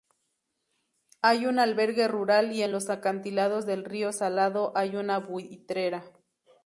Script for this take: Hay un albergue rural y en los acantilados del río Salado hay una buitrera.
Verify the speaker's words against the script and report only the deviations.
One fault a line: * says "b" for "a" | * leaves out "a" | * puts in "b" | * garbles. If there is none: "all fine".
all fine